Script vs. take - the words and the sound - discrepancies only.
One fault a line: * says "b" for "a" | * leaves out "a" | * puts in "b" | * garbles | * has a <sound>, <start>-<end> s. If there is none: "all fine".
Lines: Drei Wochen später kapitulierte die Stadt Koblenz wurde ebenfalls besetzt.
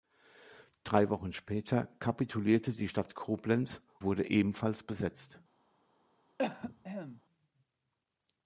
* has a cough, 6.4-7.2 s